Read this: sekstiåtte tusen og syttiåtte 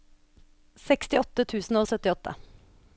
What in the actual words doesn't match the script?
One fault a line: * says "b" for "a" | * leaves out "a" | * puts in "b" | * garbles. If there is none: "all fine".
all fine